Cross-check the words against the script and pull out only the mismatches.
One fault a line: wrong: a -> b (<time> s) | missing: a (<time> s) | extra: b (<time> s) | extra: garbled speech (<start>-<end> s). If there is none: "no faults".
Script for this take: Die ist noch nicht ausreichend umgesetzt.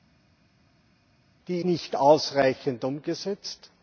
missing: ist noch (1.6 s)